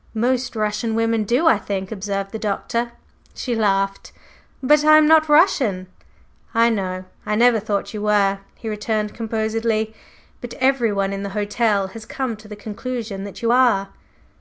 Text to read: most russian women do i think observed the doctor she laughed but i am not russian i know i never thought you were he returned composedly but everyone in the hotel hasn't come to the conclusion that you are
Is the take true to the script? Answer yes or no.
no